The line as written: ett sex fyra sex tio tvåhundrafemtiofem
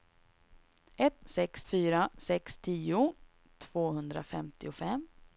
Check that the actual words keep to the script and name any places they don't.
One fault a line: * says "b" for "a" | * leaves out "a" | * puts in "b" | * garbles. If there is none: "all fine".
all fine